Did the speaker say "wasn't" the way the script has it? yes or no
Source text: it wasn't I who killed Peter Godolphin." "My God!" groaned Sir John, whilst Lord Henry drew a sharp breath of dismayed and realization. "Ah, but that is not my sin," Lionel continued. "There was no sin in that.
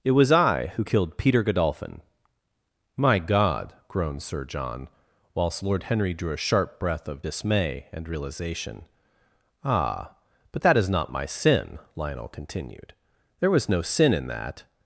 no